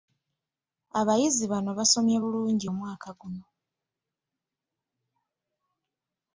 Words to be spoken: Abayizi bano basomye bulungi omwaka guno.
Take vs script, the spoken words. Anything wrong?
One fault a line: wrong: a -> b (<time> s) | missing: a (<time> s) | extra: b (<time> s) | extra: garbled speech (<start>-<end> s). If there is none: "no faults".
no faults